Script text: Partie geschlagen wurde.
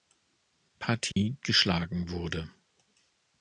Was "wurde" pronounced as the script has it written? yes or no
yes